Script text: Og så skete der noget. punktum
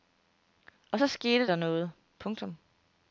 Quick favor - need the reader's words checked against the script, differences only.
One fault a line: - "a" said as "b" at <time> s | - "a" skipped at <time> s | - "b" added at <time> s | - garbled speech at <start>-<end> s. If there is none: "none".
none